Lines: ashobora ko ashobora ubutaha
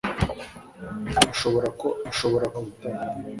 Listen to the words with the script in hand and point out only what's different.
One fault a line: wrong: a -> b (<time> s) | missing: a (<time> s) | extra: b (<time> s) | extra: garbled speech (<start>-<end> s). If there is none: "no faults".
no faults